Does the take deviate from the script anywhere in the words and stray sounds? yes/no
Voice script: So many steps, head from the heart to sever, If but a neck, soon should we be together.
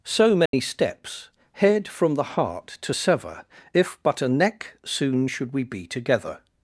yes